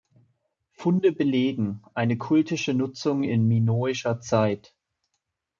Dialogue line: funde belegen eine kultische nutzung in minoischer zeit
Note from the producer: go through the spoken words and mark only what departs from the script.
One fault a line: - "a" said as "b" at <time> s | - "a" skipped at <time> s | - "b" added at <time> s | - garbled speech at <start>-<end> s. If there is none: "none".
none